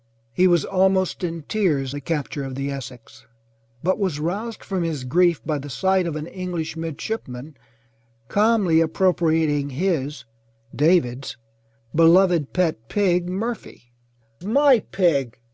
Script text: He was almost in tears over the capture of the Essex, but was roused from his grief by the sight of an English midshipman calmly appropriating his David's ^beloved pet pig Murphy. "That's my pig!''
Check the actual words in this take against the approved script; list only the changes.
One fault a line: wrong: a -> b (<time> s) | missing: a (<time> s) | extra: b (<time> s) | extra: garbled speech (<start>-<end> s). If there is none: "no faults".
missing: over (1.9 s)
missing: That's (13.9 s)